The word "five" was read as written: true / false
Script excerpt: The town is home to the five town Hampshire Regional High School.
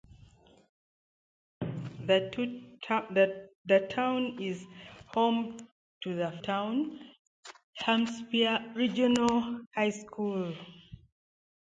false